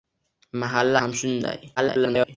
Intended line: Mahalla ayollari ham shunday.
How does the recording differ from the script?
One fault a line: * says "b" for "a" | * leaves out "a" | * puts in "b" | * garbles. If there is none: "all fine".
* leaves out "ayollari"
* garbles